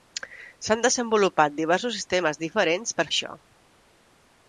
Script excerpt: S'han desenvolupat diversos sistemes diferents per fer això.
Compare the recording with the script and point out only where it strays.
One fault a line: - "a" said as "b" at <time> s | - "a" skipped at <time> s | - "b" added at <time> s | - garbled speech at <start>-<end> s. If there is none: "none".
- "fer" skipped at 3.1 s